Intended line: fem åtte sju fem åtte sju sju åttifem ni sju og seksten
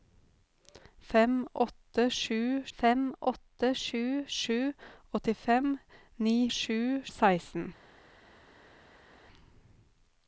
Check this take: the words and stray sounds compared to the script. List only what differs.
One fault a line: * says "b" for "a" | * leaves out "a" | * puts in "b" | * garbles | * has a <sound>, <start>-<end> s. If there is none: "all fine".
all fine